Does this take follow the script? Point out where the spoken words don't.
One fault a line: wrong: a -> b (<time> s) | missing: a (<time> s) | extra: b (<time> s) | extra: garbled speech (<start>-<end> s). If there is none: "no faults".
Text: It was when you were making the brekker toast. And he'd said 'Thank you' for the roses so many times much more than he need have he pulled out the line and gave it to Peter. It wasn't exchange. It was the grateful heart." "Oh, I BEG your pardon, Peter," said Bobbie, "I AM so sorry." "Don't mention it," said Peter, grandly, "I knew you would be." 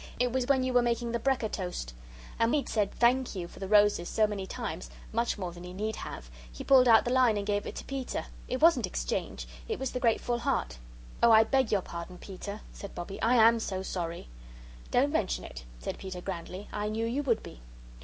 no faults